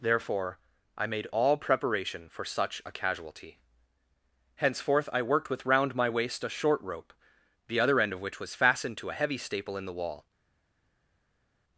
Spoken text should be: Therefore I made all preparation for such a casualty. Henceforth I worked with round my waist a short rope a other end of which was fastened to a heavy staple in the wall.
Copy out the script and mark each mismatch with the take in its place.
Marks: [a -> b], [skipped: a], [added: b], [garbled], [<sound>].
Therefore I made all preparation for such a casualty. Henceforth I worked with round my waist a short rope [a -> the] other end of which was fastened to a heavy staple in the wall.